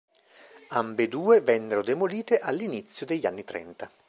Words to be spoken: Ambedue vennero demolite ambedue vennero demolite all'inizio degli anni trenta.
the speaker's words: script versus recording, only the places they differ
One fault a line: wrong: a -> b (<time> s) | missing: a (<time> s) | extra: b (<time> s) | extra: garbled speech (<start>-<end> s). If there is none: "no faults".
missing: ambedue vennero demolite (2.4 s)